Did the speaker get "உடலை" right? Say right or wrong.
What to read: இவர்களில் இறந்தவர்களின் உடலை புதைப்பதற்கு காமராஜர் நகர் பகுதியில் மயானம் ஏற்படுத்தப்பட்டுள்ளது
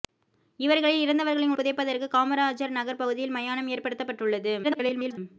wrong